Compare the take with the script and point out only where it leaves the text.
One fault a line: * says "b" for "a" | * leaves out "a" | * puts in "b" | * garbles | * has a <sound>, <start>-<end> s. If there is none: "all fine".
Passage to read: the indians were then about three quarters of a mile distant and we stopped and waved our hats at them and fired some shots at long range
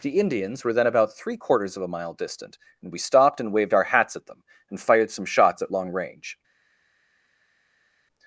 all fine